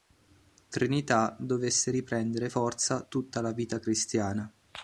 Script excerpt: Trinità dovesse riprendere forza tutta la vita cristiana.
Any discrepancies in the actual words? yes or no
no